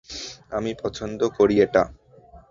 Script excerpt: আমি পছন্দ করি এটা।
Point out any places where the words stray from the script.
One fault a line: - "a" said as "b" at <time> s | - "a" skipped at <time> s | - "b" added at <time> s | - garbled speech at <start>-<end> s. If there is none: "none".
none